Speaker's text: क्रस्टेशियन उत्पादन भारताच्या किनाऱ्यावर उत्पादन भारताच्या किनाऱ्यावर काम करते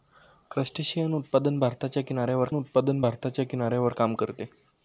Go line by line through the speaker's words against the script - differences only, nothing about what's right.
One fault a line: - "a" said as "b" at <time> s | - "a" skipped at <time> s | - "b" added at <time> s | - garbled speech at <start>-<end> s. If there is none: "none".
none